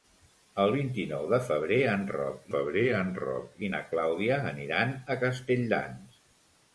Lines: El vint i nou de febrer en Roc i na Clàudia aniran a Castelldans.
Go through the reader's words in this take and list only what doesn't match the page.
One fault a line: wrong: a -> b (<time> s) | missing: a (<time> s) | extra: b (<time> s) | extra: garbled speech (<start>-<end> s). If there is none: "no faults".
extra: febrer en Roc (2.5 s)